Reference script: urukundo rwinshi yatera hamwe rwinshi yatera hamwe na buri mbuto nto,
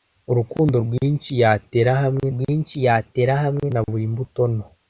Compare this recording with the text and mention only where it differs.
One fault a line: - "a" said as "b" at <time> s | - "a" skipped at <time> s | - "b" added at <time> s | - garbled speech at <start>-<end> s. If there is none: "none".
none